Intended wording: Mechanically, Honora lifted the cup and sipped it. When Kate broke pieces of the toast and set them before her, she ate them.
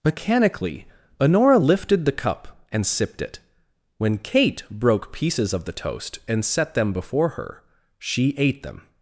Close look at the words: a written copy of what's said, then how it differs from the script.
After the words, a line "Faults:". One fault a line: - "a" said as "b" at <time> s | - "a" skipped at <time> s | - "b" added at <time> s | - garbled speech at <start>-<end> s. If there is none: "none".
Mechanically, Honora lifted the cup and sipped it. When Kate broke pieces of the toast and set them before her, she ate them.
Faults:
none